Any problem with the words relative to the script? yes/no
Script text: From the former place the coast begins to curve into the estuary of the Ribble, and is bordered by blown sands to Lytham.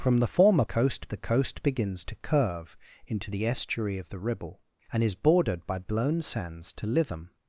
yes